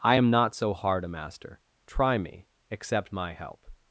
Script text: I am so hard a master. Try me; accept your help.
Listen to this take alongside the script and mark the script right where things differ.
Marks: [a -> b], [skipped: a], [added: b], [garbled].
I am [added: not] so hard a master. Try me; accept [your -> my] help.